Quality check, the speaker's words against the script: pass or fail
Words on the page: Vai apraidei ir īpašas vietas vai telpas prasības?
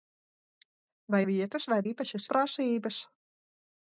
fail